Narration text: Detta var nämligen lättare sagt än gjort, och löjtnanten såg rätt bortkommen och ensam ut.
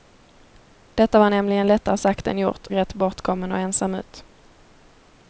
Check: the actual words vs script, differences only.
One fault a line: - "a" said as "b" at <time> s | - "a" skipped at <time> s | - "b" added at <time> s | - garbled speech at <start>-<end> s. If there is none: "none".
- "och löjtnanten såg" skipped at 2.7 s